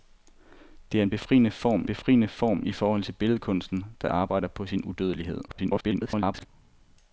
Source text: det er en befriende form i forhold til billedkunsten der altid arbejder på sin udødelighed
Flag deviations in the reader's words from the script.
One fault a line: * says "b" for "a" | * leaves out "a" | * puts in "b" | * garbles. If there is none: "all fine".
* puts in "befriende form"
* leaves out "altid"
* garbles